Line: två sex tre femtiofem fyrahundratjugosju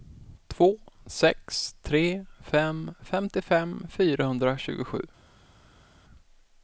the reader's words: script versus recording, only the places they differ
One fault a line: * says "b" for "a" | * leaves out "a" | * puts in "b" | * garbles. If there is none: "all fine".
* puts in "fem"